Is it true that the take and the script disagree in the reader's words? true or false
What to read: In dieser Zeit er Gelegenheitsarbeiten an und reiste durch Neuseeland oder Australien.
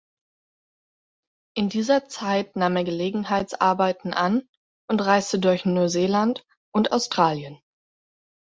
true